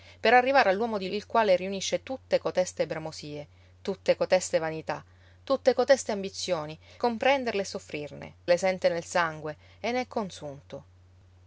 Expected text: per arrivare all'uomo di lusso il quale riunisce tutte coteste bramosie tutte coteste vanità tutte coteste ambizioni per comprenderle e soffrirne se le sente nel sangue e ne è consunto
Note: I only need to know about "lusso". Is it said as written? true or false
false